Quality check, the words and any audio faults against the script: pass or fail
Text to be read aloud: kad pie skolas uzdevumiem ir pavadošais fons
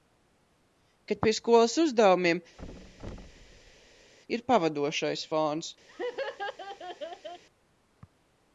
fail